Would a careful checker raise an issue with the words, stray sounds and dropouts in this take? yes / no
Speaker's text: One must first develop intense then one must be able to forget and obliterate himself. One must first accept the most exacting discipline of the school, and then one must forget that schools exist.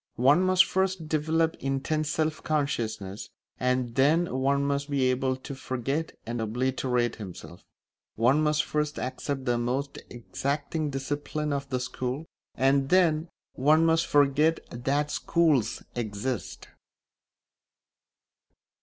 yes